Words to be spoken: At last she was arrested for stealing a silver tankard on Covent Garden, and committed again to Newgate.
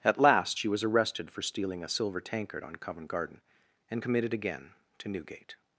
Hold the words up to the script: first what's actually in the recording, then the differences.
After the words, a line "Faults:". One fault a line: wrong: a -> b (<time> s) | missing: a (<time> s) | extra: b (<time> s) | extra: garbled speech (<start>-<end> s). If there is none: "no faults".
At last she was arrested for stealing a silver tankard on Covent Garden, and committed again to Newgate.
Faults:
no faults